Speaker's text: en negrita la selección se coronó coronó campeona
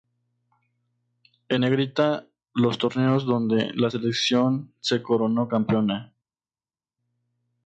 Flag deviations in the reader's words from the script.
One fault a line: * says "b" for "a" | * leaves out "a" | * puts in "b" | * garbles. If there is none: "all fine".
* puts in "los torneos donde"
* leaves out "coronó"